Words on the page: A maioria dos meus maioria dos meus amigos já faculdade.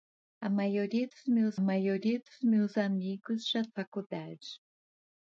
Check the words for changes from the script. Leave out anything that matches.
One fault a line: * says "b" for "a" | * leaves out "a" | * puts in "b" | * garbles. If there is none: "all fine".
all fine